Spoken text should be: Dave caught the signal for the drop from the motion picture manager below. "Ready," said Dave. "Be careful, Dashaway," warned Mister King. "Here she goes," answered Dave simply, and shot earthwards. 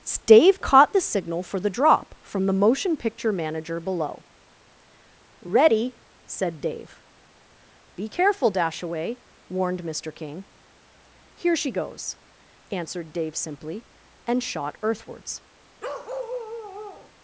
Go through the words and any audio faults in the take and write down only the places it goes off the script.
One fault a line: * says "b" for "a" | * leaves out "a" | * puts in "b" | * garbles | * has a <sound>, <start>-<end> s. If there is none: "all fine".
* has a bark, 15.8-17.1 s